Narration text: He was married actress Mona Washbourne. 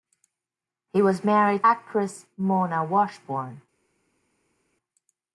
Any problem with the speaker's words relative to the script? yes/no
no